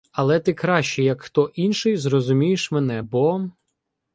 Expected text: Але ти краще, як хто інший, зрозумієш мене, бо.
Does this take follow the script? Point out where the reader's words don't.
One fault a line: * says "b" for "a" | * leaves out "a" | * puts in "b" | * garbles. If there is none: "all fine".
all fine